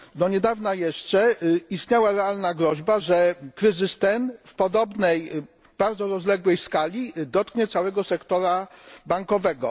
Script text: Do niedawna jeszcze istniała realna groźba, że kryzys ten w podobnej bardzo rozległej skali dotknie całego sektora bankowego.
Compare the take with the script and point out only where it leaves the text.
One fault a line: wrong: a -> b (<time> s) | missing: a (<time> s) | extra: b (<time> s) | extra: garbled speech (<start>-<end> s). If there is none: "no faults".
no faults